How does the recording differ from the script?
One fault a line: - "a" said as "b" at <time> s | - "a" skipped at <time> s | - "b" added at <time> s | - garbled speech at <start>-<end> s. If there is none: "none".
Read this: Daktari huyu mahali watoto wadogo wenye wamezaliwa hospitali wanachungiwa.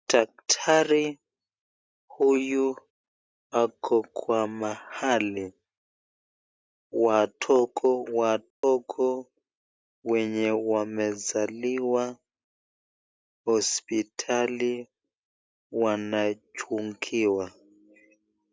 - "ako Kwa" added at 3.6 s